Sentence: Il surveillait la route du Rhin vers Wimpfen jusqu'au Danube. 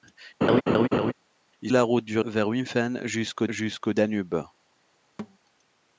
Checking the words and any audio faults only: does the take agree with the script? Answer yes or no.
no